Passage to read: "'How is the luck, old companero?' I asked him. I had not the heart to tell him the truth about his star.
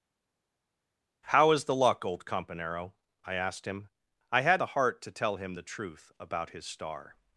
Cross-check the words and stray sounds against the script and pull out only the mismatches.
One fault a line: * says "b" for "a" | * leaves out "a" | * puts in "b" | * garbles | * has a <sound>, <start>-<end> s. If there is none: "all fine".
* leaves out "not"